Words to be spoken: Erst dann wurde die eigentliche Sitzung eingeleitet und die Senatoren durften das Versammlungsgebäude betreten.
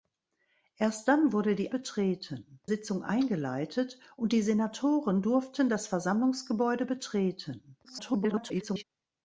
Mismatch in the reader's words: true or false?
true